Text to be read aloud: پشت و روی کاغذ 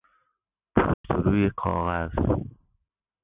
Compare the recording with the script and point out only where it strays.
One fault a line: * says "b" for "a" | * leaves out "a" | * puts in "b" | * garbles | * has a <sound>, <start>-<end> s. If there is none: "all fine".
* has a dropout, 0.9-1.0 s